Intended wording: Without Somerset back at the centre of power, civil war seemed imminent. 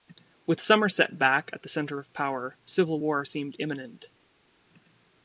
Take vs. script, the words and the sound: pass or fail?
fail